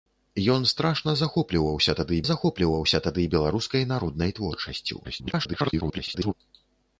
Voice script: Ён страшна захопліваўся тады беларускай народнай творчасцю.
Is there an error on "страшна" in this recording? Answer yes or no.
no